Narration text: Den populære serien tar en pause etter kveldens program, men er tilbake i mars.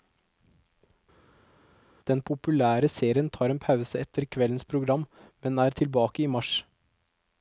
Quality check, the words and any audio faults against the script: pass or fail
pass